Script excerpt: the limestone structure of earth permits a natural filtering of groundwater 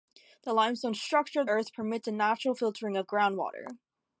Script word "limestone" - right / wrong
right